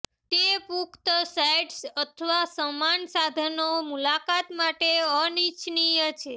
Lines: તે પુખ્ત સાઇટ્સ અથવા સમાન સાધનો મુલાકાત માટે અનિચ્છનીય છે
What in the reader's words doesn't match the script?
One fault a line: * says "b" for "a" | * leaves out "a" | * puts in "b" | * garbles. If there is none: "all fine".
all fine